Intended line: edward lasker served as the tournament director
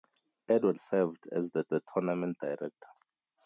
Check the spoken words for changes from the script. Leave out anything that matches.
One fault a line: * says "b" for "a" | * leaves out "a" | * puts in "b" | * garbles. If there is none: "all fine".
* leaves out "lasker"
* puts in "the"